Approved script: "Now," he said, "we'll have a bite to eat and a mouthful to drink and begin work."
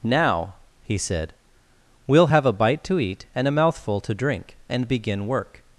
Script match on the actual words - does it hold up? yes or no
yes